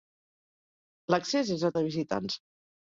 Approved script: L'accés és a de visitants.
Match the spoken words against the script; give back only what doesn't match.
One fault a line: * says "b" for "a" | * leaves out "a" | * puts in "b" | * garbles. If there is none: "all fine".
all fine